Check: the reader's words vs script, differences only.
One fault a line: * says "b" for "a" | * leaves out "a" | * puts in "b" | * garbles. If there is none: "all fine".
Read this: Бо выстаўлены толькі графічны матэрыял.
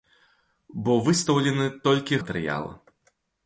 * leaves out "графічны"